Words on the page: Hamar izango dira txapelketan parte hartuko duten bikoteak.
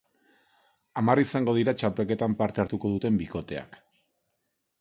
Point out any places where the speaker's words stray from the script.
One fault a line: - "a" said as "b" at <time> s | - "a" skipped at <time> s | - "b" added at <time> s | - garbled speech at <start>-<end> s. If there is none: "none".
none